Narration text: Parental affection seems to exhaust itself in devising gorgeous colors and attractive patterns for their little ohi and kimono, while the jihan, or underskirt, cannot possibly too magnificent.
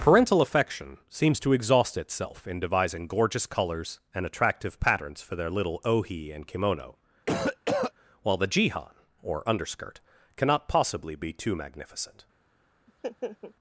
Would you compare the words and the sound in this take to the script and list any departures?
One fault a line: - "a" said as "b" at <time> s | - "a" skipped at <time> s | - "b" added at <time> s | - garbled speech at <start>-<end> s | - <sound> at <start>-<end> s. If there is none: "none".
- cough at 7.3-7.9 s
- "be" added at 11.1 s
- laugh at 12.9-13.5 s